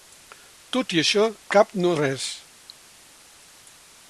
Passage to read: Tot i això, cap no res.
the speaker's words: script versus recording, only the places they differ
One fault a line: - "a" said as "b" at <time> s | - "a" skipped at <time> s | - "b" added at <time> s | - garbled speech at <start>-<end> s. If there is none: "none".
none